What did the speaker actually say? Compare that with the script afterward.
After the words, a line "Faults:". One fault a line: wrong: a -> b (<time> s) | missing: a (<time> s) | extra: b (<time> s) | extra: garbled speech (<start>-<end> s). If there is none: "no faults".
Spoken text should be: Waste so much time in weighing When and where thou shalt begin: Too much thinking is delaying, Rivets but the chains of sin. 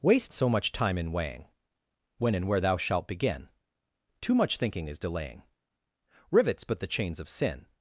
Waste so much time in weighing When and where thou shalt begin: Too much thinking is delaying, Rivets but the chains of sin.
Faults:
no faults